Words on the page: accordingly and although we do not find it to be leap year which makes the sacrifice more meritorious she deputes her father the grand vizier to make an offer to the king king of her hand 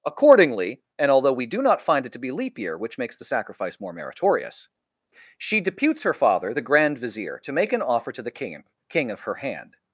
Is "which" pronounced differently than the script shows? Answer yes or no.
no